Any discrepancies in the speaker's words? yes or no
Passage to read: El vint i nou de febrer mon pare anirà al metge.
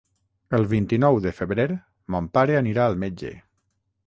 no